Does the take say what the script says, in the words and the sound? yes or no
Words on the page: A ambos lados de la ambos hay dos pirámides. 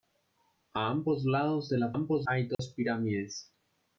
no